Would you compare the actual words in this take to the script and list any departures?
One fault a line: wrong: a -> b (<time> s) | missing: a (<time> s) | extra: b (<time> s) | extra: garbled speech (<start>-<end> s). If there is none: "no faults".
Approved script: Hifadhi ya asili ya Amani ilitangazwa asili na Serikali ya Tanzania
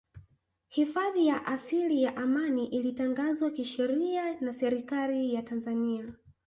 wrong: asili -> kisheria (3.5 s)